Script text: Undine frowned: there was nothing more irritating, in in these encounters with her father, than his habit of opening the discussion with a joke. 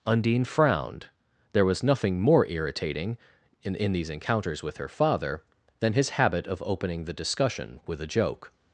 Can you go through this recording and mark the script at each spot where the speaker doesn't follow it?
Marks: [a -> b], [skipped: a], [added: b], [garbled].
Undine frowned: there was nothing more irritating, in in these encounters with her father, than his habit of opening the discussion with a joke.